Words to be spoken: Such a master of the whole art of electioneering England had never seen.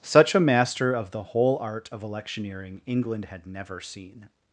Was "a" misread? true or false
false